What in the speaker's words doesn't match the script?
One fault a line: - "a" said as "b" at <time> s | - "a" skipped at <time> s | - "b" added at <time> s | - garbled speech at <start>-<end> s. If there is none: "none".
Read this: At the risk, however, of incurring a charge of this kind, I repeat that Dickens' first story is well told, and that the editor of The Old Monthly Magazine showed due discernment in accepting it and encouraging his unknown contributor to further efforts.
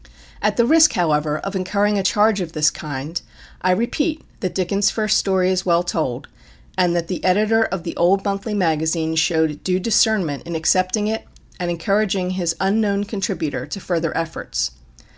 none